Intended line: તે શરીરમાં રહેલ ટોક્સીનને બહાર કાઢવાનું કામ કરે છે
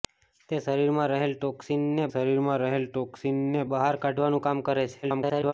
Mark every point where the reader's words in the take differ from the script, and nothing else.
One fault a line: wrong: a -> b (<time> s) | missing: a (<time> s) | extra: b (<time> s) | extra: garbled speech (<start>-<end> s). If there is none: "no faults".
extra: શરીરમાં રહેલ ટોક્સીનને (2.1 s)
extra: garbled speech (5.0-5.5 s)